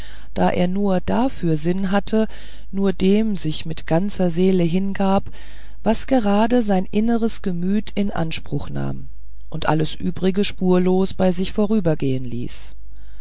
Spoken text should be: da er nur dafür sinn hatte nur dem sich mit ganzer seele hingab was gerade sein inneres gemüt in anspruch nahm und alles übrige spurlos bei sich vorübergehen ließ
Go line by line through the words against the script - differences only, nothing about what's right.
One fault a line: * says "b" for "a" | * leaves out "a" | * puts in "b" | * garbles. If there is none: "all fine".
all fine